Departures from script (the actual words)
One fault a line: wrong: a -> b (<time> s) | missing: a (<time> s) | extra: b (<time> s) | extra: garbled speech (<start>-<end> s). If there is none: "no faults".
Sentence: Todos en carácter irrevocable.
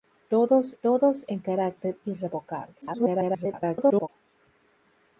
extra: todos (0.8 s)
extra: garbled speech (2.8-4.1 s)